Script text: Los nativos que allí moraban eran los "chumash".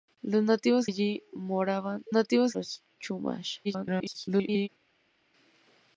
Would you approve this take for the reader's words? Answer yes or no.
no